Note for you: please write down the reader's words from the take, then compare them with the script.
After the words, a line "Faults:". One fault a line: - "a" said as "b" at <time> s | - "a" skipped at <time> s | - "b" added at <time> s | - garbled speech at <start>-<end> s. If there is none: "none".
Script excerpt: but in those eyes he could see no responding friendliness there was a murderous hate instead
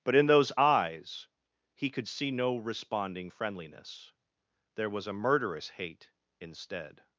but in those eyes he could see no responding friendliness there was a murderous hate instead
Faults:
none